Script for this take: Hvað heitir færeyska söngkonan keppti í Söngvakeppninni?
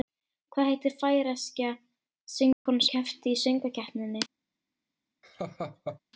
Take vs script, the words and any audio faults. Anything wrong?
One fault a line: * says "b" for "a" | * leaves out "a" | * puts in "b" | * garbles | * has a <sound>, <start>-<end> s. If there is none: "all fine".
* has a dropout, 2.5-2.7 s
* has a laugh, 5.2-6.0 s